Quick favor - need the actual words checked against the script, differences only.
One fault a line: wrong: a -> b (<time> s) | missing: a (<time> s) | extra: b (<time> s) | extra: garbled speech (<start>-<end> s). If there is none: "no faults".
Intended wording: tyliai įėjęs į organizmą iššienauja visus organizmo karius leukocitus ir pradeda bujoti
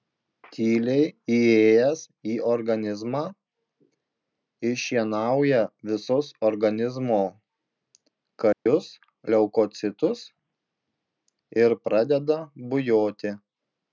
no faults